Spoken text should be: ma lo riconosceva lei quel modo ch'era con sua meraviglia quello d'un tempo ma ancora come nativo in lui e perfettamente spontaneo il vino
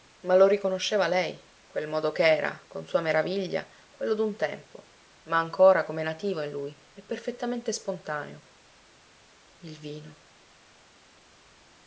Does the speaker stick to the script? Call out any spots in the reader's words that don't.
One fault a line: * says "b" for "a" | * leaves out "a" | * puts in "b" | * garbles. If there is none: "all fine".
all fine